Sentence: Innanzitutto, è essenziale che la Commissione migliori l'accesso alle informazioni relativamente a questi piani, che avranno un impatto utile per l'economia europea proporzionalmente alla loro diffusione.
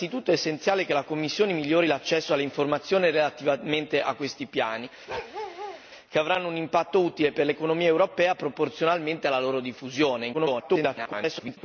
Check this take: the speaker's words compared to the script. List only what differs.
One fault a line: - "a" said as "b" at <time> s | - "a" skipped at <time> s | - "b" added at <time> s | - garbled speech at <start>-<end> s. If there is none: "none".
- garbled speech at 10.3-11.6 s